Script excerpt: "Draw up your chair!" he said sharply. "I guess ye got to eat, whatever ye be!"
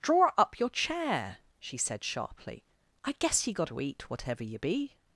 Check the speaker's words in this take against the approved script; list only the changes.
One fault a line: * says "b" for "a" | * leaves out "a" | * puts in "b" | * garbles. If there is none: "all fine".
* says "she" for "he"